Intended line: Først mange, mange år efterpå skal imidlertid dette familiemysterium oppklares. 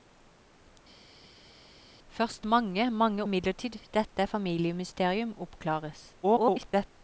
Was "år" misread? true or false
true